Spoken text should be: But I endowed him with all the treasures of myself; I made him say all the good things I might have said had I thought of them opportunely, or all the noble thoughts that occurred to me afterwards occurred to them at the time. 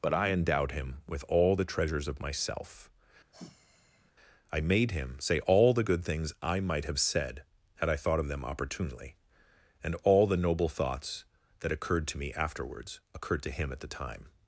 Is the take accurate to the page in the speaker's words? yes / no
no